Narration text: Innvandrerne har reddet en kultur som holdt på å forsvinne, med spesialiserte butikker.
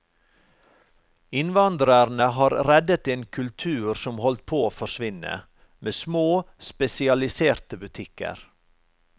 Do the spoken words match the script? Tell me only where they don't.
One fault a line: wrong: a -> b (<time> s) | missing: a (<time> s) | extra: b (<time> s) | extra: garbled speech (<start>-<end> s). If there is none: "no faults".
extra: små (5.9 s)